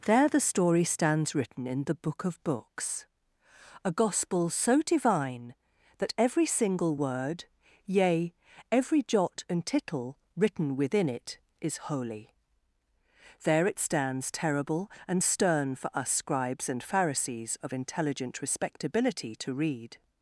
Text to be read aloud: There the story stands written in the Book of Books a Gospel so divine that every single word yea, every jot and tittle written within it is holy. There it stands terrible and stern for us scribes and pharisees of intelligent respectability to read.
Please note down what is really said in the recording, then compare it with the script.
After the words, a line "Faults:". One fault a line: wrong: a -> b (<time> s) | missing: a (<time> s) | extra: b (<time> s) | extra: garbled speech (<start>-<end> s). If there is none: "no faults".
There the story stands written in the Book of Books a Gospel so divine that every single word yea, every jot and tittle written within it is holy. There it stands terrible and stern for us scribes and pharisees of intelligent respectability to read.
Faults:
no faults